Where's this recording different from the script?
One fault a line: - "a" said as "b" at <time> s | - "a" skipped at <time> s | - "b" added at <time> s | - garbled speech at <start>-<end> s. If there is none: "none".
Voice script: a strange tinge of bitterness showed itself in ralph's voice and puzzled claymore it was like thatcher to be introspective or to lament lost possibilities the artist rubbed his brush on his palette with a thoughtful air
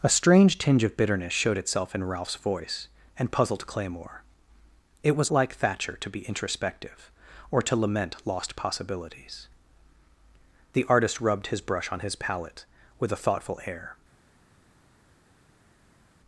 none